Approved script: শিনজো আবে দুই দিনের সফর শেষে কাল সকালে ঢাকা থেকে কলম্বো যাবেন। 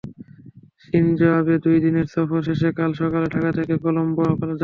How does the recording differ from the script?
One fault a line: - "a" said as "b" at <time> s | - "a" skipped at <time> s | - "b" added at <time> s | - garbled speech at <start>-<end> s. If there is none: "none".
none